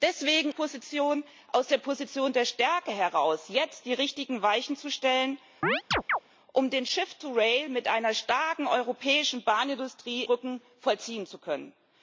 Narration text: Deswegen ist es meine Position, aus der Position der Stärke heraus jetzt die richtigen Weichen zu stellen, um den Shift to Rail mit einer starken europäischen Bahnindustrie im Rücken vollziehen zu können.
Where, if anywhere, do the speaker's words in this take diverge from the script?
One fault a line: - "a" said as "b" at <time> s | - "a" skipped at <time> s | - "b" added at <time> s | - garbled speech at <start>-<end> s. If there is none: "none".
- "ist es meine" skipped at 0.5 s
- "im" skipped at 10.2 s